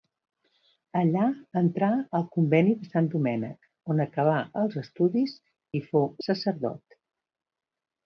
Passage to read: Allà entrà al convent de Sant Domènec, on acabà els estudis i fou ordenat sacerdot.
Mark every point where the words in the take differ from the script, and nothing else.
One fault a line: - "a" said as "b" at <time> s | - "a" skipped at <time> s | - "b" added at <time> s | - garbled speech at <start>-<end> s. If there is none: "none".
- "ordenat" skipped at 6.1 s